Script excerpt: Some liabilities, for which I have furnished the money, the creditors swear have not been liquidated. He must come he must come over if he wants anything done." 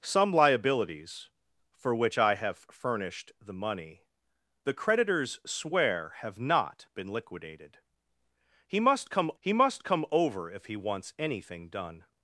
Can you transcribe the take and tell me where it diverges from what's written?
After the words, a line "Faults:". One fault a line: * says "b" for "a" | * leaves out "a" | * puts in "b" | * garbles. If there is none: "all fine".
Some liabilities, for which I have furnished the money, the creditors swear have not been liquidated. He must come he must come over if he wants anything done."
Faults:
all fine